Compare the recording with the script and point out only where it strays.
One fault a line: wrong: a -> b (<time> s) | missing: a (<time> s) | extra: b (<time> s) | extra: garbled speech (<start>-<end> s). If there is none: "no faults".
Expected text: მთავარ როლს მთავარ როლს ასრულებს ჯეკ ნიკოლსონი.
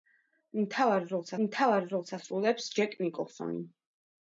no faults